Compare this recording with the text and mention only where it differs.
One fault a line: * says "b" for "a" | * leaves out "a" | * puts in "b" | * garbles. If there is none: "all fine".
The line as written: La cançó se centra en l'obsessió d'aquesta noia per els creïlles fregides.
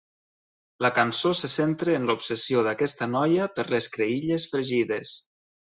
* says "les" for "els"